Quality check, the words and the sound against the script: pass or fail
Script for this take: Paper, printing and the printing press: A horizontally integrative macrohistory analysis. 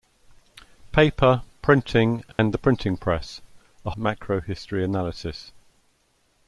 fail